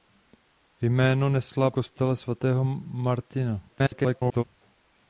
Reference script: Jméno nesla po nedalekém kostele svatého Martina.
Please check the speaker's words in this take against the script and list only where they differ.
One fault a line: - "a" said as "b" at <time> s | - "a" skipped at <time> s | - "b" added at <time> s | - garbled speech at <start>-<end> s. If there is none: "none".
- "po nedalekém" skipped at 1.7 s
- garbled speech at 3.7-4.4 s